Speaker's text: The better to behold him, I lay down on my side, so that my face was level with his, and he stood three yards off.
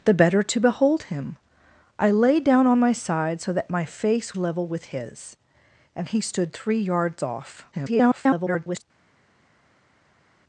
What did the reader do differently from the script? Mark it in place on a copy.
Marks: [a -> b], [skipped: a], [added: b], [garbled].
The better to behold him, I lay down on my side, so that my face [skipped: was] level with his, and he stood three yards off. [garbled]